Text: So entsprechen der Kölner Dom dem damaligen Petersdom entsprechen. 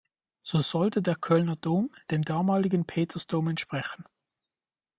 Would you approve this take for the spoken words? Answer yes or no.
no